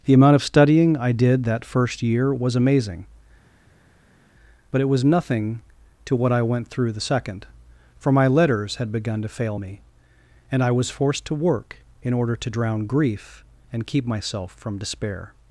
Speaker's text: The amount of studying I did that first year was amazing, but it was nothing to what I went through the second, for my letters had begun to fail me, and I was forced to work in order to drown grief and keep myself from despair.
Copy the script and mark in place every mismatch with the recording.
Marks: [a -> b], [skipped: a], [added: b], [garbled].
The amount of studying I did that first year was amazing, but it was nothing to what I went through the second, for my letters had begun to fail me, and I was forced to work in order to drown grief and keep myself from despair.